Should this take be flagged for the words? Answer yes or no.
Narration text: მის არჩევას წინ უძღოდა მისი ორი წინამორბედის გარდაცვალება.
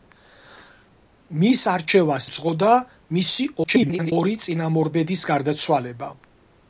yes